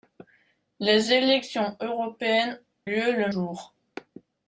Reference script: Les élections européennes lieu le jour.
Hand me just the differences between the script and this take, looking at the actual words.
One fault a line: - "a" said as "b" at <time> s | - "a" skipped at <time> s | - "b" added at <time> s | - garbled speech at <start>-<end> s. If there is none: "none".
none